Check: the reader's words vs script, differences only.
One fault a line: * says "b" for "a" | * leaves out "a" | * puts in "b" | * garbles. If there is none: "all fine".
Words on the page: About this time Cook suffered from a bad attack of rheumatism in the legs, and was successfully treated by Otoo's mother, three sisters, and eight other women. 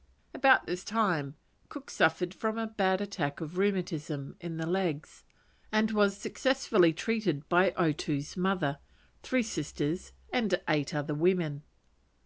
all fine